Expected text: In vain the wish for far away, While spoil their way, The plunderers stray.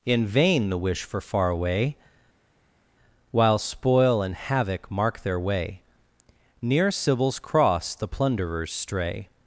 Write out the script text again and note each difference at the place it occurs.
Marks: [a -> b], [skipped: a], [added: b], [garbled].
In vain the wish for far away, While spoil [added: and havoc mark] their way, [added: Near Sybil's Cross] The plunderers stray.